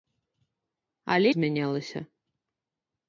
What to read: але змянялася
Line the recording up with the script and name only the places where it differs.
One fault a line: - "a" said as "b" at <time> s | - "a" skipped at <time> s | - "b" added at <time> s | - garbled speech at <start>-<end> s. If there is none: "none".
none